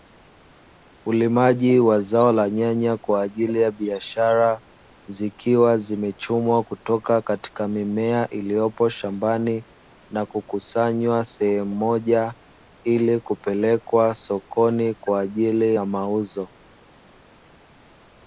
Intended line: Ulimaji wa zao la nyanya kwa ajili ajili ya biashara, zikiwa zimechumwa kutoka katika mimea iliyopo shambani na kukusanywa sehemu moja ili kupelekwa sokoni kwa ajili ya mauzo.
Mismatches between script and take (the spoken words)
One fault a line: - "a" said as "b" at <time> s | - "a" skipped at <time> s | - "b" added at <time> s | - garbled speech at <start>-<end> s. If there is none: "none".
- "ajili" skipped at 3.6 s